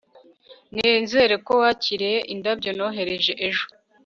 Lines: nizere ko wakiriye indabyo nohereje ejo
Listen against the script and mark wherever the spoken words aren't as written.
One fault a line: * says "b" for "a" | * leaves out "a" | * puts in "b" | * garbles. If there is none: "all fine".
all fine